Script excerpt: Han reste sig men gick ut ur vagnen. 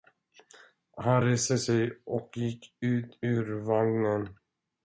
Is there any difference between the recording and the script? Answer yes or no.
yes